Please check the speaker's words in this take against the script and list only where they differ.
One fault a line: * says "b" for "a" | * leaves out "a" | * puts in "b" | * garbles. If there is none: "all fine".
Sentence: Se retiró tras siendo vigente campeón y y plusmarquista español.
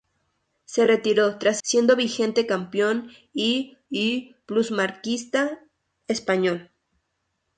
all fine